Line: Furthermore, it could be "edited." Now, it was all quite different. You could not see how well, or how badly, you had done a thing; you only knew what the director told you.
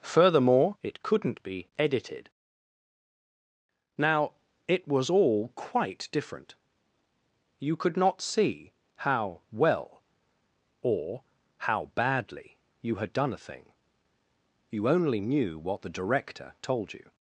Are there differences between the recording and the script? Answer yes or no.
yes